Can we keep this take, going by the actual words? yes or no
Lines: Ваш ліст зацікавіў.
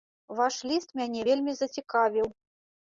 no